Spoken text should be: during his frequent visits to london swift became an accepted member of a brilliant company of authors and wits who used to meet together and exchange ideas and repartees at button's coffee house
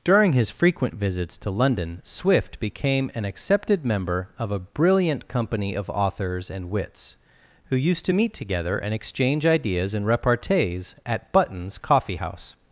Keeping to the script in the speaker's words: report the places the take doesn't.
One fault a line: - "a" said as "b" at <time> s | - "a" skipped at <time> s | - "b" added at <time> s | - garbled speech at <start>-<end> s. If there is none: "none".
none